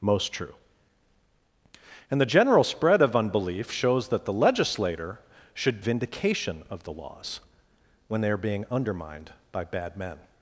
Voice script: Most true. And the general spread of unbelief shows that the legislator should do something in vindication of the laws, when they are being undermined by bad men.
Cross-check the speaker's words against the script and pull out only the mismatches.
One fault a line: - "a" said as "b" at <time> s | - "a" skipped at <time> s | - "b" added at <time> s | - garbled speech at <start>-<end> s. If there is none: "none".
- "do something in" skipped at 5.8 s